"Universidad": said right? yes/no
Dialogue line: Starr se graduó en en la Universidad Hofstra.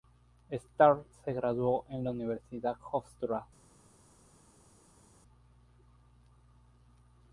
yes